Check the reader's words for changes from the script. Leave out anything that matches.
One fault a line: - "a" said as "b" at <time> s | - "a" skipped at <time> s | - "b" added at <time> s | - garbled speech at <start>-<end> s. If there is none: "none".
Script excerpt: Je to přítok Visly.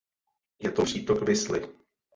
none